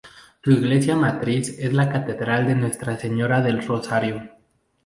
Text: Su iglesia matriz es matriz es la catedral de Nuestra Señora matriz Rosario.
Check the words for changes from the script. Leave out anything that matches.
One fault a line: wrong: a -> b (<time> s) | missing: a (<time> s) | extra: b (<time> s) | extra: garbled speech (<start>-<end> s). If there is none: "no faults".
missing: matriz es (1.7 s)
wrong: matriz -> del (3.4 s)